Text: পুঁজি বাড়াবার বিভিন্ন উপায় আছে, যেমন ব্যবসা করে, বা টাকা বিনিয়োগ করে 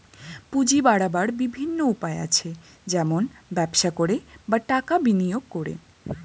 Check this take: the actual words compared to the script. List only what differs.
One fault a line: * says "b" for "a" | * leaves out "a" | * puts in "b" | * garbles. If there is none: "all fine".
all fine